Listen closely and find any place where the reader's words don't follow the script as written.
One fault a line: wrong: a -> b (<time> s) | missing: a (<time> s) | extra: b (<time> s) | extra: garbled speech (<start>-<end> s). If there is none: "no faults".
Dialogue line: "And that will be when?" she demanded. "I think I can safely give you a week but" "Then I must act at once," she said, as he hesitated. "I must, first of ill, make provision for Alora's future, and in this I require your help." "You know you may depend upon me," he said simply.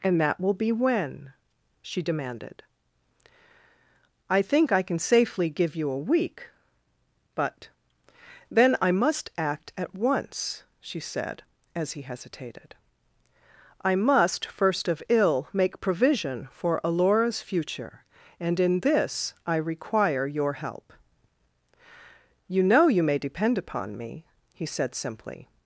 no faults